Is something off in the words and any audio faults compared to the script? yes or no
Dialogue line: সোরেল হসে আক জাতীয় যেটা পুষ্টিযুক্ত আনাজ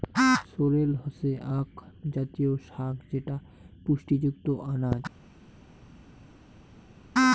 yes